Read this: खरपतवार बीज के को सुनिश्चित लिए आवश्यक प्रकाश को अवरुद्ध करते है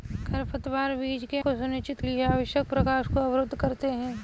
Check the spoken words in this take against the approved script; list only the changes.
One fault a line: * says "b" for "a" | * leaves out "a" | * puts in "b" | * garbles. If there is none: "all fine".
all fine